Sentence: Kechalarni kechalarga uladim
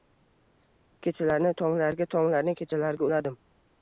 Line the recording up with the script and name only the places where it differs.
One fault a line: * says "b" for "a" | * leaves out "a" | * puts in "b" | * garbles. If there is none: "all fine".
* puts in "tonglarga tonglarni"